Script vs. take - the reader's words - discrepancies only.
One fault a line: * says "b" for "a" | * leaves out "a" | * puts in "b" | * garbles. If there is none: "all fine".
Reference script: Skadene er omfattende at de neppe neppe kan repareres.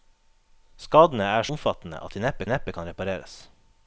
all fine